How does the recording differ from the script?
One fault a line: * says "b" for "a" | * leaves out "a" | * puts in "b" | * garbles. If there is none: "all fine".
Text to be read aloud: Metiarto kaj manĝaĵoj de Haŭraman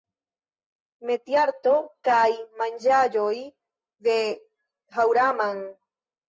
all fine